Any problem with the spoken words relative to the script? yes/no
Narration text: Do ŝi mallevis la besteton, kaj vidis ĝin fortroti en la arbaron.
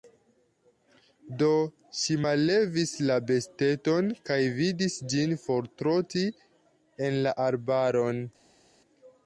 no